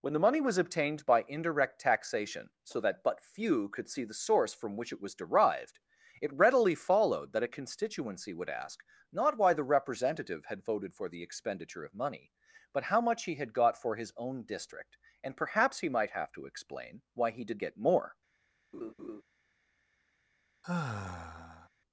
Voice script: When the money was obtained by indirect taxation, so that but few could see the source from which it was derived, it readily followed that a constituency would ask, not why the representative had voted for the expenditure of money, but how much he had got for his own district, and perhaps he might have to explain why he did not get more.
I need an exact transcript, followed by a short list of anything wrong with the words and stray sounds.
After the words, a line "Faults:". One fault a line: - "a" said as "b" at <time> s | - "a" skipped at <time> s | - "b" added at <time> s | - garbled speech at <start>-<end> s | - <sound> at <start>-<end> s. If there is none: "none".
When the money was obtained by indirect taxation, so that but few could see the source from which it was derived, it readily followed that a constituency would ask, not why the representative had voted for the expenditure of money, but how much he had got for his own district, and perhaps he might have to explain why he did get more.
Faults:
- "not" skipped at 17.6 s
- laugh at 18.7-19.2 s
- sigh at 20.6-21.7 s